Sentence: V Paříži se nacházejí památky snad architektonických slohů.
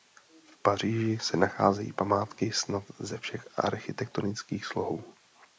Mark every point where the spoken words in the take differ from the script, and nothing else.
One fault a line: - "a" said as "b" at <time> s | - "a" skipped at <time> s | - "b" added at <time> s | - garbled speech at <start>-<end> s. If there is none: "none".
- "ze všech" added at 3.0 s